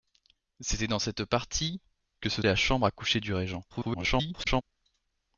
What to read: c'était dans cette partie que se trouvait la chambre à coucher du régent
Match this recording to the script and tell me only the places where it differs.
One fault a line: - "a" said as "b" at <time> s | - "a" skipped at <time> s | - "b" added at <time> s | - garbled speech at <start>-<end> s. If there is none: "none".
- "trouvait" skipped at 2.4 s
- garbled speech at 3.7-4.6 s